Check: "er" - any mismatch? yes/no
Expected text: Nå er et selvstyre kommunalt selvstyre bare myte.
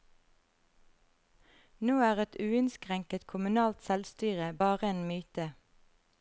no